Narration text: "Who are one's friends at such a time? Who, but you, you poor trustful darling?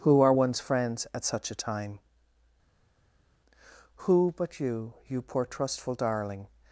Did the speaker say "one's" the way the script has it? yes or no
yes